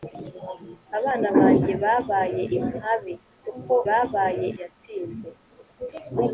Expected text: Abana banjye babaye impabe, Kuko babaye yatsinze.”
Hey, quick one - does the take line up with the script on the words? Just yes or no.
yes